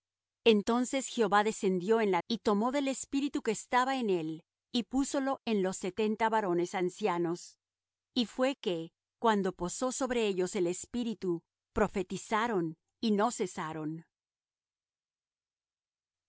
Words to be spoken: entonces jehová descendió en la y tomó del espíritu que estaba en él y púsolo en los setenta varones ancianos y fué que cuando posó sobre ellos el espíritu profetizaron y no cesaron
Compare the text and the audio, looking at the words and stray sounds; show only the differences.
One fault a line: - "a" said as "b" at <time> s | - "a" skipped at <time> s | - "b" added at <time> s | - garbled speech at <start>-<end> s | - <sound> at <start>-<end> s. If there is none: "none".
none